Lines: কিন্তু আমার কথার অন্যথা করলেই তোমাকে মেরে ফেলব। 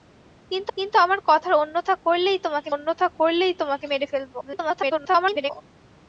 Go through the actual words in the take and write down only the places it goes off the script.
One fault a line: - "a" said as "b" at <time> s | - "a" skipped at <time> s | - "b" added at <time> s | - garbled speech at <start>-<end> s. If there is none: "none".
- "কিন্তু" added at 0.8 s
- "অন্যথা করলেই তোমাকে" added at 2.7 s
- garbled speech at 4.4-5.5 s